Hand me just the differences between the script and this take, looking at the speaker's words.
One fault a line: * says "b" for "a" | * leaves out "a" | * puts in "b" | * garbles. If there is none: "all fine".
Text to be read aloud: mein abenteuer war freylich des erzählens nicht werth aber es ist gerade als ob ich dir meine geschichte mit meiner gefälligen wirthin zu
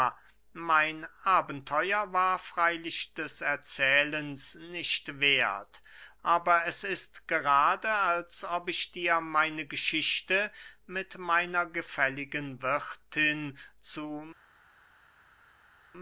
all fine